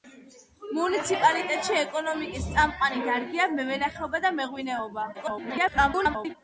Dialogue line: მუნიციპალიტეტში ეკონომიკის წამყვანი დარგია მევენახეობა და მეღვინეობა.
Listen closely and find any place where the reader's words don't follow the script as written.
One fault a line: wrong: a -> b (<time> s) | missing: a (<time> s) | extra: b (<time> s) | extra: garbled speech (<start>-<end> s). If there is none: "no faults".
extra: garbled speech (5.1-6.4 s)